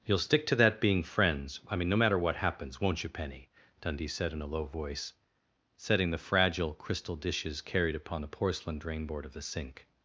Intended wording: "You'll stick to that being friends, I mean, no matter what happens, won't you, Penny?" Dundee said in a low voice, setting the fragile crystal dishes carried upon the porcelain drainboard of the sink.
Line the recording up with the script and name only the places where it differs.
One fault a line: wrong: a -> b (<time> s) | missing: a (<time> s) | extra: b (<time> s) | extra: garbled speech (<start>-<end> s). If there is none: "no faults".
no faults